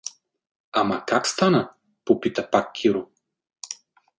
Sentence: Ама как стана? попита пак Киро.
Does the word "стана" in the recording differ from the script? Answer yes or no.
no